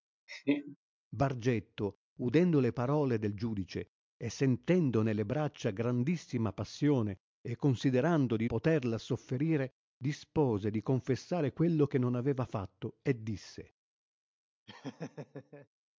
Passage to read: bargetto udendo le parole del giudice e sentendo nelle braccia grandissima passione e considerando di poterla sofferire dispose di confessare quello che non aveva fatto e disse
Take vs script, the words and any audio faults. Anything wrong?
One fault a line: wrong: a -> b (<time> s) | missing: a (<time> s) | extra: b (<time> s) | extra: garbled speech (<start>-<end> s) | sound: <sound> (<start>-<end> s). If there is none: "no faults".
sound: laugh (0.3-0.8 s)
sound: laugh (14.7-15.7 s)